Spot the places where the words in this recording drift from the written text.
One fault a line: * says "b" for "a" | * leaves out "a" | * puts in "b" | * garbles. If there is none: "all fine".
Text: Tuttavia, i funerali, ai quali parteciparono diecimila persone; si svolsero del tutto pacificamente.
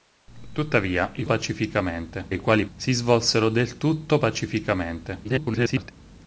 * says "pacificamente" for "funerali"
* leaves out "parteciparono diecimila persone"
* garbles